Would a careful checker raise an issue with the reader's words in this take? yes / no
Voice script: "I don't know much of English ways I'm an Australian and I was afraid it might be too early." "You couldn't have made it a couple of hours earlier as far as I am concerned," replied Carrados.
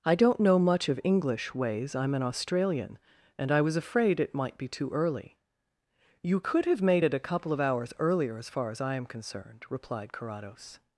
yes